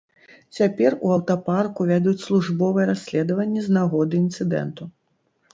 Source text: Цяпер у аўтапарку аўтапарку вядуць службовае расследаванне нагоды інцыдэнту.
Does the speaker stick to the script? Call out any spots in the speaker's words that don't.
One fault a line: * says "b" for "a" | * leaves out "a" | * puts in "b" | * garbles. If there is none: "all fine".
* leaves out "аўтапарку"
* puts in "з"